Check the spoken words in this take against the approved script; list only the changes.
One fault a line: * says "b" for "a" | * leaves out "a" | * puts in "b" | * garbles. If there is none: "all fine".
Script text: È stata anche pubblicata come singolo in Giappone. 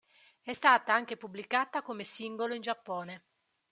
all fine